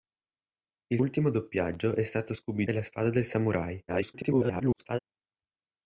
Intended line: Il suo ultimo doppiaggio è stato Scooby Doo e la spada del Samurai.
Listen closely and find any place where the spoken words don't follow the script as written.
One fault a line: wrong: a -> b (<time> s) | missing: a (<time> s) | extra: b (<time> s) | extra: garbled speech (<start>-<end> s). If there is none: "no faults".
missing: suo (1.0 s)
missing: Doo (2.6 s)
extra: garbled speech (3.9-5.0 s)